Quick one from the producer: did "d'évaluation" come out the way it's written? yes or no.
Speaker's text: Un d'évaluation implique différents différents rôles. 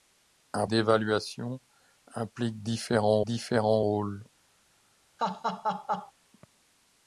yes